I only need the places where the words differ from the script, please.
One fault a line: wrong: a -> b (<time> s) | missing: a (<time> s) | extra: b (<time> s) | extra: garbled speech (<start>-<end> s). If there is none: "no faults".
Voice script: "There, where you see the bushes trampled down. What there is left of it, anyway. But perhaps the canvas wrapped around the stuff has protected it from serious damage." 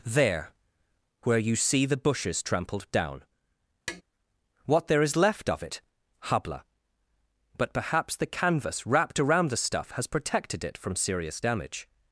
wrong: anyway -> habla (6.2 s)